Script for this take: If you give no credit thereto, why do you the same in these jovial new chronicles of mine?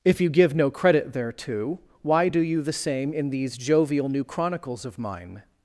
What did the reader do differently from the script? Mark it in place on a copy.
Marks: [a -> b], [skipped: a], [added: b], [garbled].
If you give no credit thereto, why do you the same in these jovial new chronicles of mine?